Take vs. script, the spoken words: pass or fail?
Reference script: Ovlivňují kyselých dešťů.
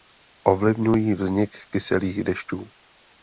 fail